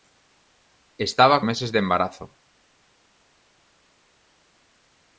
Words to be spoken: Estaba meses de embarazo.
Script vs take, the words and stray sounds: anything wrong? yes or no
no